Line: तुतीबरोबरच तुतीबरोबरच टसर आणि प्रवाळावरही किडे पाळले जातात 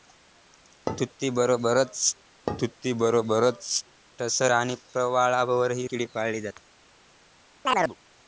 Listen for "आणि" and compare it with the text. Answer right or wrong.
right